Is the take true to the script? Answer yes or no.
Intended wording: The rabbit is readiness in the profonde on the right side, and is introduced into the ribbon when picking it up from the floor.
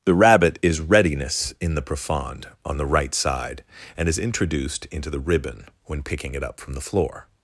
yes